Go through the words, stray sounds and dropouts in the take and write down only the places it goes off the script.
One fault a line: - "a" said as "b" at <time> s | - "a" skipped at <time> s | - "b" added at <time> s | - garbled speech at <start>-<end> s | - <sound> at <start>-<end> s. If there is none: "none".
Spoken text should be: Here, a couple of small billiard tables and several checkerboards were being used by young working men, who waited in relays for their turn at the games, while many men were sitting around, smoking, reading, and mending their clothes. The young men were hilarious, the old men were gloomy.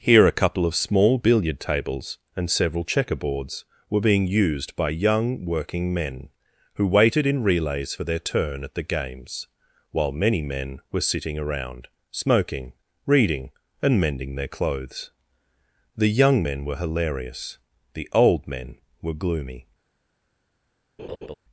- laugh at 21.0-21.4 s